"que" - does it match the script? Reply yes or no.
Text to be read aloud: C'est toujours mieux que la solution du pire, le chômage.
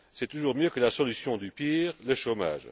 yes